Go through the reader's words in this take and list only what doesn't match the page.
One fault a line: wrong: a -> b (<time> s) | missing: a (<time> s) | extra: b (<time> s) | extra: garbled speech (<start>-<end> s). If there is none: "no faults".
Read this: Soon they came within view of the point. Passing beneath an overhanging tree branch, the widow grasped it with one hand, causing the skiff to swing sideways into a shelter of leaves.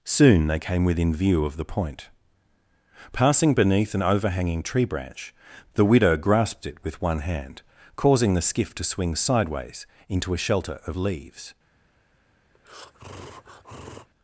no faults